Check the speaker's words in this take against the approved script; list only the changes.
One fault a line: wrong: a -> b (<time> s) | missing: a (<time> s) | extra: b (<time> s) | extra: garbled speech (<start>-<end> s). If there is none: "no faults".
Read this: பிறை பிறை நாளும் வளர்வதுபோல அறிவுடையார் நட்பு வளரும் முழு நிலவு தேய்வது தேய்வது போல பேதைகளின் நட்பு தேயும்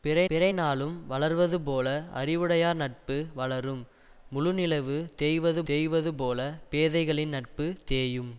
no faults